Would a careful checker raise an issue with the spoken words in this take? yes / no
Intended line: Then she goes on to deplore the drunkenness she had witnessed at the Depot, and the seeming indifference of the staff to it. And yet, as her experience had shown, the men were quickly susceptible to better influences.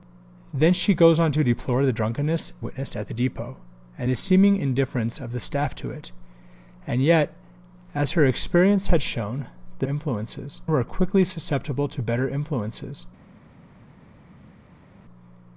yes